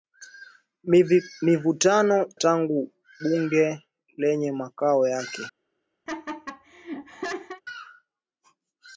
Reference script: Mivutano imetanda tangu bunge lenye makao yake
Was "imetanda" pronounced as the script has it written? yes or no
no